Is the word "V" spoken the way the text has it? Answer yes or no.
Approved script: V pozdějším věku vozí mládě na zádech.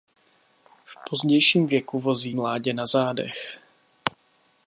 yes